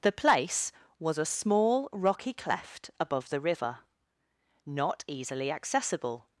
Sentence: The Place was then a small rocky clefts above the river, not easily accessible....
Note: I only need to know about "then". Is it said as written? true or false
false